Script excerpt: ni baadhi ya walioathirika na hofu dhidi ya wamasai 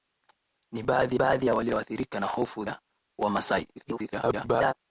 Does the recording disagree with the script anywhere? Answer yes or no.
yes